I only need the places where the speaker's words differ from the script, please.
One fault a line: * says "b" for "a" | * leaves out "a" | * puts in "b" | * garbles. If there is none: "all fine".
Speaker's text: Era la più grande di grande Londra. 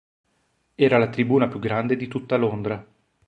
* puts in "tribuna"
* says "tutta" for "grande"